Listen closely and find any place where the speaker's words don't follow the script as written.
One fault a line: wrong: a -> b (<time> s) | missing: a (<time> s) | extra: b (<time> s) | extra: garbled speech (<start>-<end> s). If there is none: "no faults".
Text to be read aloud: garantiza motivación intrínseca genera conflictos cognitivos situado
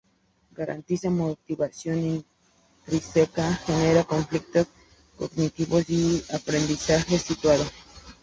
extra: y aprendizaje (5.9 s)